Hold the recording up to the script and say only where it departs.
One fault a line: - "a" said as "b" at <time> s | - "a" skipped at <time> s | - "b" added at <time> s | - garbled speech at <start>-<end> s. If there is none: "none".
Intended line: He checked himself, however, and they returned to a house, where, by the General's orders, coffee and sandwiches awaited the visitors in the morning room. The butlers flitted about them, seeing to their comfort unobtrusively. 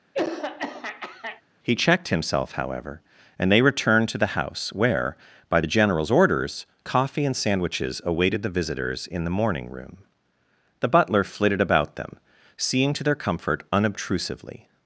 - "a" said as "the" at 4.2 s
- "butlers" said as "butler" at 10.9 s